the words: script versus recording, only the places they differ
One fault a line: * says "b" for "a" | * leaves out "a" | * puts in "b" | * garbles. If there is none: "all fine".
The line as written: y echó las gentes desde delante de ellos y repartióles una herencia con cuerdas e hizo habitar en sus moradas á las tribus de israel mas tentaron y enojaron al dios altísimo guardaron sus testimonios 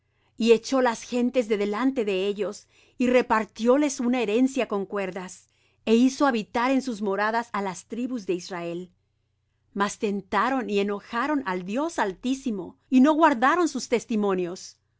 * says "de" for "desde"
* puts in "y no"